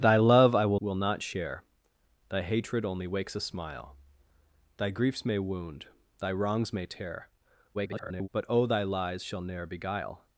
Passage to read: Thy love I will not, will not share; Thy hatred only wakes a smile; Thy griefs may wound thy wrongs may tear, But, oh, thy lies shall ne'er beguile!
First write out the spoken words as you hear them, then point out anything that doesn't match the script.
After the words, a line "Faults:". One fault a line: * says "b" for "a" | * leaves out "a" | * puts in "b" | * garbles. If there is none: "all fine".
Thy love I will will not share; Thy hatred only wakes a smile; Thy griefs may wound thy wrongs may tear, [garbled] But, oh, thy lies shall ne'er beguile!
Faults:
* leaves out "not"
* garbles